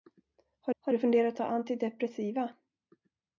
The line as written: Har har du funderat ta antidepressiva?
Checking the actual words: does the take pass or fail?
pass